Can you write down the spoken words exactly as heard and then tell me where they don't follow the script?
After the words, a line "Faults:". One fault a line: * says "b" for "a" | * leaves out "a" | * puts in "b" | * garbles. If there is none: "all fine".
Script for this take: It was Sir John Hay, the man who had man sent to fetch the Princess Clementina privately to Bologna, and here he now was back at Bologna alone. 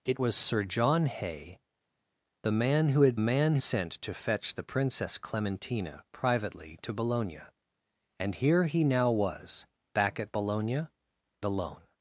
It was Sir John Hay, the man who had man sent to fetch the Princess Clementina privately to Bologna, and here he now was back at Bologna alone.
Faults:
all fine